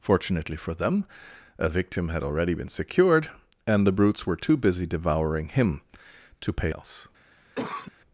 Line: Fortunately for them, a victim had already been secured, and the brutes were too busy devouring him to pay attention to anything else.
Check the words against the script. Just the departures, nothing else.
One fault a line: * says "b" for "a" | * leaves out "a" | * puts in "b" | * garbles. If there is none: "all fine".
* leaves out "attention to anything"